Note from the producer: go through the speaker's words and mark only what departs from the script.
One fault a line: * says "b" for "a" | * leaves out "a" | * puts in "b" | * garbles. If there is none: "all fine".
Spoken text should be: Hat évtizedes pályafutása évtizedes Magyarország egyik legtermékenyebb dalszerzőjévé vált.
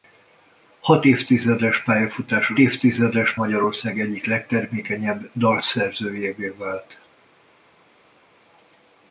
all fine